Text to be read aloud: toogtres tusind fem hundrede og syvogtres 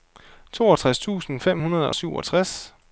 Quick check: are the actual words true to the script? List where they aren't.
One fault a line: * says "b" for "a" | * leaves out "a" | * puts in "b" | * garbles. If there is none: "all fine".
all fine